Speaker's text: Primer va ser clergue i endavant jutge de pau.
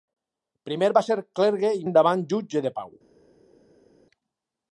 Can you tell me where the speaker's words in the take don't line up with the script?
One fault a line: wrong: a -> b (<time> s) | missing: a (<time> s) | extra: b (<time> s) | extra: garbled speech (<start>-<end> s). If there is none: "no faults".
no faults